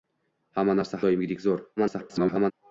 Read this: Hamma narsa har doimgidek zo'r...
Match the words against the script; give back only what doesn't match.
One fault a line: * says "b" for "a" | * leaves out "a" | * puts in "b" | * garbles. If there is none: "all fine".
* leaves out "har"
* garbles